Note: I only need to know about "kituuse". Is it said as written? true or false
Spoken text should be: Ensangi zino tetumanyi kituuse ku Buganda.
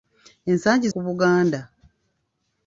false